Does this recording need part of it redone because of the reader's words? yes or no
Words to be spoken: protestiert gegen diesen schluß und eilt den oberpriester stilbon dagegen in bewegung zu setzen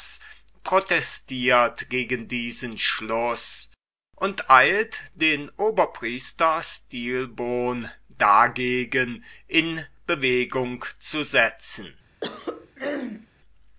no